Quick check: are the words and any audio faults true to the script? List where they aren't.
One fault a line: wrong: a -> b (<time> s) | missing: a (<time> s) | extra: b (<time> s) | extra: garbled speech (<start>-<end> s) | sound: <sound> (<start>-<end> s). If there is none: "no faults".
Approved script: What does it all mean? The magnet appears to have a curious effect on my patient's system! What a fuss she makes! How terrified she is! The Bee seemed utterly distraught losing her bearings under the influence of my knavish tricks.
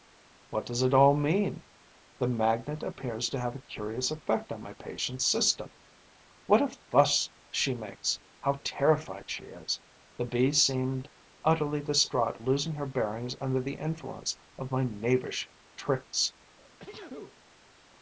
sound: sneeze (16.6-17.4 s)